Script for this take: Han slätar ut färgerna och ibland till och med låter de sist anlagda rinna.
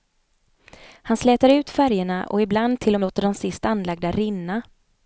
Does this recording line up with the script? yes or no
no